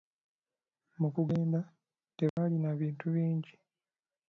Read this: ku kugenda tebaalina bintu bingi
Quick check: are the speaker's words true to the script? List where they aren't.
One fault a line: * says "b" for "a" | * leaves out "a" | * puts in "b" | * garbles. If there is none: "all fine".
* says "mu" for "ku"